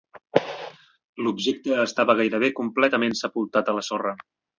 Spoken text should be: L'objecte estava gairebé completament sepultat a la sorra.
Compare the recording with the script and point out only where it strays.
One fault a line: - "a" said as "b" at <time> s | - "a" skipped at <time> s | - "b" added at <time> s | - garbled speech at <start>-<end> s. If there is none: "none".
none